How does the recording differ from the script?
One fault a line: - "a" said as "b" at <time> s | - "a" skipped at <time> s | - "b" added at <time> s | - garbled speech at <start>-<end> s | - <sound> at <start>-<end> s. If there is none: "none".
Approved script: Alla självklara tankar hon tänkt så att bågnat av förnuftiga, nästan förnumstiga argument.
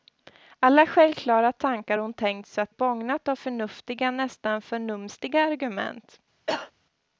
- cough at 6.5-6.7 s